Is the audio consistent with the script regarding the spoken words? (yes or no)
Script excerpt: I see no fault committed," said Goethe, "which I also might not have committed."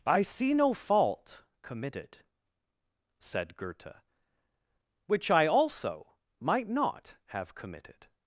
yes